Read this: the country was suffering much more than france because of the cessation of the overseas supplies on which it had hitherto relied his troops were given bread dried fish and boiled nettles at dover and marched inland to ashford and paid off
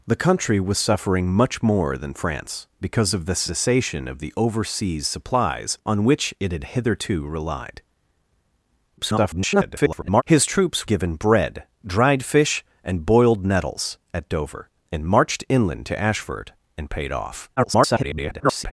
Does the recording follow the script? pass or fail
fail